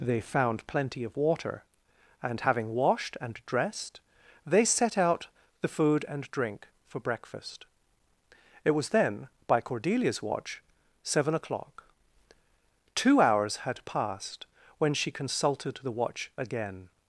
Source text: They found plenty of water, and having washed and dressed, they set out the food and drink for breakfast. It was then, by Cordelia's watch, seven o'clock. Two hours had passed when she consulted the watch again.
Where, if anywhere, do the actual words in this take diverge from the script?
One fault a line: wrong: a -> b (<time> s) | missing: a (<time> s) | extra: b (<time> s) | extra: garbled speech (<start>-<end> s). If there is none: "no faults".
no faults